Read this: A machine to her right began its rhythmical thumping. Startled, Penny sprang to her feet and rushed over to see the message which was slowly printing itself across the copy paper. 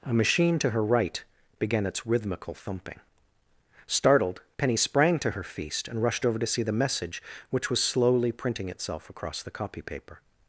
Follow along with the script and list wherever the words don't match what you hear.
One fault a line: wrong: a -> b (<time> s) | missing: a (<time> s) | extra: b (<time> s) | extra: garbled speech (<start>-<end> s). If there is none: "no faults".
wrong: feet -> feast (5.4 s)